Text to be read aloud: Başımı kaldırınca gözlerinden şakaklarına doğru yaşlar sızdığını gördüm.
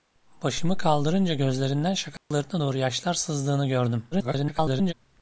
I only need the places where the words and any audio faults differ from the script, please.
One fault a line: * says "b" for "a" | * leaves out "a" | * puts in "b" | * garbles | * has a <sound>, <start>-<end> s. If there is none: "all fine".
* has a dropout, 2.2-2.3 s
* garbles